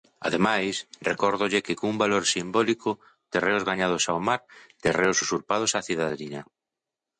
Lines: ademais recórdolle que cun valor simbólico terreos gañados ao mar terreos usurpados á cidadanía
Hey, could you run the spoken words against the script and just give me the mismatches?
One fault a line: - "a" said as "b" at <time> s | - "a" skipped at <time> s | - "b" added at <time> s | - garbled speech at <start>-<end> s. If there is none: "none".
none